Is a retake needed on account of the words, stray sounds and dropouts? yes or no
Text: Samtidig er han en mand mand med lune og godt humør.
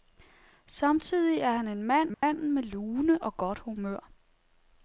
yes